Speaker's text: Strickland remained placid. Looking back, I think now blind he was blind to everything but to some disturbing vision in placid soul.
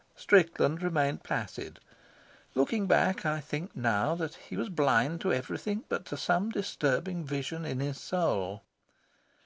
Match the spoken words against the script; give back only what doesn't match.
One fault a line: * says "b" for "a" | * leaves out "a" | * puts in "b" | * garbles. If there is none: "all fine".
* says "that" for "blind"
* says "his" for "placid"